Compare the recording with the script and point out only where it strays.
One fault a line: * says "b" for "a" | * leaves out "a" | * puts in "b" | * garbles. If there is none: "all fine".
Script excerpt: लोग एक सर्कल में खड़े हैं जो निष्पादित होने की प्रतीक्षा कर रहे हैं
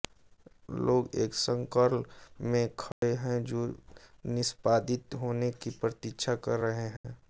all fine